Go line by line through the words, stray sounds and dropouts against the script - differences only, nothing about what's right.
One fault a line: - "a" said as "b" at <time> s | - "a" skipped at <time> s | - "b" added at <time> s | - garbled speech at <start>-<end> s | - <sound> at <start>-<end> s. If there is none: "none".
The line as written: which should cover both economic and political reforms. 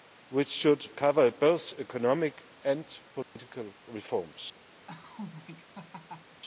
- dropout at 3.2-3.4 s
- laugh at 4.9-6.4 s